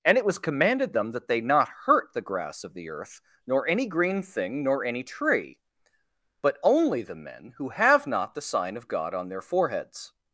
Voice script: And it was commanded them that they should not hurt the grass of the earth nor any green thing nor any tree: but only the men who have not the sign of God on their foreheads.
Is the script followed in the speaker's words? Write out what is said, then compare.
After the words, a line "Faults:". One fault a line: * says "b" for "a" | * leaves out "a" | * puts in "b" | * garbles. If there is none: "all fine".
And it was commanded them that they not hurt the grass of the earth nor any green thing nor any tree: but only the men who have not the sign of God on their foreheads.
Faults:
* leaves out "should"